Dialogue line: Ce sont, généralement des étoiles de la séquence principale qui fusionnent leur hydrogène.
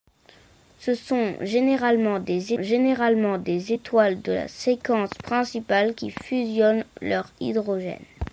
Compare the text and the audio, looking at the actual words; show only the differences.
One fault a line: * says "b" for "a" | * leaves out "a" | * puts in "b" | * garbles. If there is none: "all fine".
* puts in "généralement des"